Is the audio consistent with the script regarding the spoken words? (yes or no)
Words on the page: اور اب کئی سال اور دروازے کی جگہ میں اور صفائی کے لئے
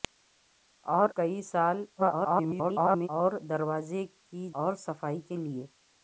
no